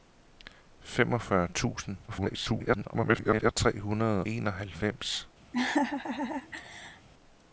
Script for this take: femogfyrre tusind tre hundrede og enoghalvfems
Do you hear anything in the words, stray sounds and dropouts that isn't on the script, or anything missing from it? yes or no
yes